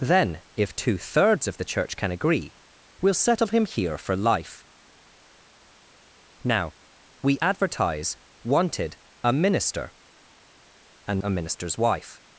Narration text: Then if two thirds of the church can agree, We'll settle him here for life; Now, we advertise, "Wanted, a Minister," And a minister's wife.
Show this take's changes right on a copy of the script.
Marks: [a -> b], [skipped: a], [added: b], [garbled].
Then if two thirds of the church can agree, We'll settle him here for life; Now, we advertise, "Wanted, a Minister," And a minister's wife.